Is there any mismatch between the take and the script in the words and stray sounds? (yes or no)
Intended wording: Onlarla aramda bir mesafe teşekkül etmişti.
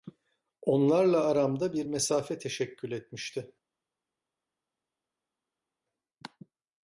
no